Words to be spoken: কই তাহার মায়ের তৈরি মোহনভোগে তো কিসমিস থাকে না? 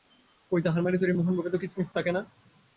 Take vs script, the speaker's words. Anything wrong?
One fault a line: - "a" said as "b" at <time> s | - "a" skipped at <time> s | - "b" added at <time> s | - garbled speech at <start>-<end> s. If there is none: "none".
none